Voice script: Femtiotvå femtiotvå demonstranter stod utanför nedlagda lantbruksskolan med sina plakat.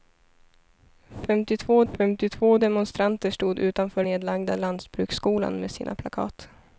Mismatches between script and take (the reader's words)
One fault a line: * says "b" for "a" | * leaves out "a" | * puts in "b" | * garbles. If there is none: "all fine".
all fine